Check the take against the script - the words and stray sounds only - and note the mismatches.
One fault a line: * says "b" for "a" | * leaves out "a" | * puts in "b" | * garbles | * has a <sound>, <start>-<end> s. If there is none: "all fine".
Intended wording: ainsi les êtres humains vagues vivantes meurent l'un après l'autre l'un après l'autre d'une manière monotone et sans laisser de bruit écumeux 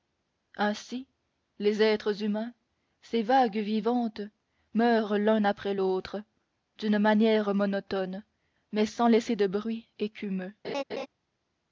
* puts in "ces"
* leaves out "l'un après l'autre"
* says "mais" for "et"
* has a laugh, 10.6-11.1 s